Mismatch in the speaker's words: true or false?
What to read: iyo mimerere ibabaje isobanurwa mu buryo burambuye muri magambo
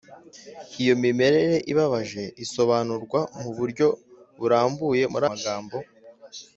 false